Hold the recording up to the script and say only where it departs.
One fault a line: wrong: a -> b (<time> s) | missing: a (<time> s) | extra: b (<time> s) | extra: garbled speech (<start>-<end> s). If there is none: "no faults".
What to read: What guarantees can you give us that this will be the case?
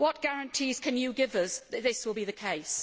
no faults